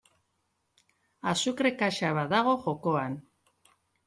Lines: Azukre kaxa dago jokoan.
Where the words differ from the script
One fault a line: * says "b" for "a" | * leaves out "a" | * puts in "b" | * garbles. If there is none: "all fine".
* puts in "bat"